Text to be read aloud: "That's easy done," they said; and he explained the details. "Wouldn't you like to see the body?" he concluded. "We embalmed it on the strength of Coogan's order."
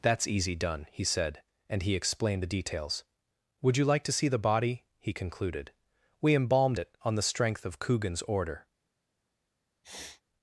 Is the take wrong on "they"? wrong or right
wrong